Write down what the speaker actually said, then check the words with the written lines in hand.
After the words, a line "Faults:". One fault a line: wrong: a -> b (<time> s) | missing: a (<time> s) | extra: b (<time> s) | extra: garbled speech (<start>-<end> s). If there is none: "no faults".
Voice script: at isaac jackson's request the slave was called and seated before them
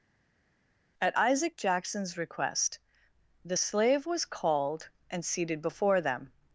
at isaac jackson's request the slave was called and seated before them
Faults:
no faults